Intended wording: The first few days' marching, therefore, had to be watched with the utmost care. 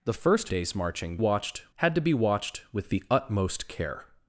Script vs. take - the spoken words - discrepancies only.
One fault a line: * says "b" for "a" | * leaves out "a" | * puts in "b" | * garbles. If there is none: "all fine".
* leaves out "few"
* says "watched" for "therefore"